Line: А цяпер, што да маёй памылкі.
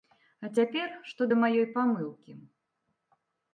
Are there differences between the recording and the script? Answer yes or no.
no